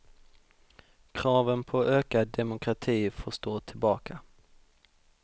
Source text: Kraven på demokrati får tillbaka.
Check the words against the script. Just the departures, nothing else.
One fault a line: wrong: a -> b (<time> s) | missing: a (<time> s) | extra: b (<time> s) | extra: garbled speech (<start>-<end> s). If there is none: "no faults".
extra: ökad (1.9 s)
extra: stå (3.3 s)